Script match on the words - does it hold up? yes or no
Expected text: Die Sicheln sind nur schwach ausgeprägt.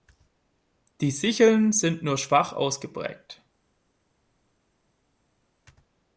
yes